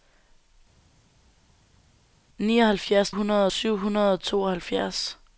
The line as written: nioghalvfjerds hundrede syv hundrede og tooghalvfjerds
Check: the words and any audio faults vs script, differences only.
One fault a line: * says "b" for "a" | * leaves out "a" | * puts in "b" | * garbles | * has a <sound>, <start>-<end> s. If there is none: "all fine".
all fine